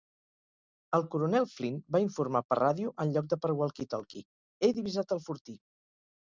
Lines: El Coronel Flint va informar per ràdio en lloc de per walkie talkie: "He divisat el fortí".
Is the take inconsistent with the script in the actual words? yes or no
no